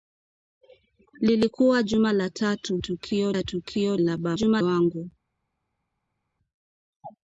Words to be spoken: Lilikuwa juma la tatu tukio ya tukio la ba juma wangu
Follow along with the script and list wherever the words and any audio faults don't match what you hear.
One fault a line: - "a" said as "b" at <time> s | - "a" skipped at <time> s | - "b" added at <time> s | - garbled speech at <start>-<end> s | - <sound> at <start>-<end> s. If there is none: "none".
none